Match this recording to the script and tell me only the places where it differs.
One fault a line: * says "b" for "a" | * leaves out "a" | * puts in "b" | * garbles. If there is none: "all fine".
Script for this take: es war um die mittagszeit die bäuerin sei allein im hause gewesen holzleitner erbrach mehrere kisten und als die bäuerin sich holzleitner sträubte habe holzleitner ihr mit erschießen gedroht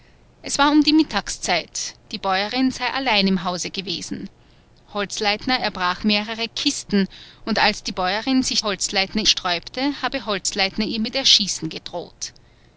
all fine